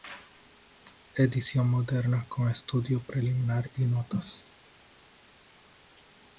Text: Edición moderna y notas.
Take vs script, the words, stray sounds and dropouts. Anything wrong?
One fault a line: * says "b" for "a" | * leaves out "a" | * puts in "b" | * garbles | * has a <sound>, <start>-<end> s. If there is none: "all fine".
* puts in "con estudio preliminar"